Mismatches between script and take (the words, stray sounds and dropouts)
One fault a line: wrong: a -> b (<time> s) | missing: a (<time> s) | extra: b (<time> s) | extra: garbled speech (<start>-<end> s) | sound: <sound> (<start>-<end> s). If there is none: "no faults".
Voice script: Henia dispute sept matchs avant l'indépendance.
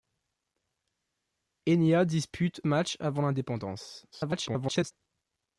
missing: sept (2.6 s)
extra: garbled speech (4.1-4.9 s)